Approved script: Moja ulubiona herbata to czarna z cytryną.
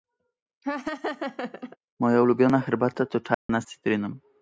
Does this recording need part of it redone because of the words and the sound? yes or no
yes